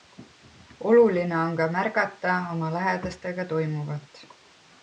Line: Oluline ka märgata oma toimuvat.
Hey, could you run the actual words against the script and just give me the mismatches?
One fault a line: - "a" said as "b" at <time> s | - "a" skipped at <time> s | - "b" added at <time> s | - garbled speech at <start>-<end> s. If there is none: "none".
- "on" added at 1.4 s
- "lähedastega" added at 2.8 s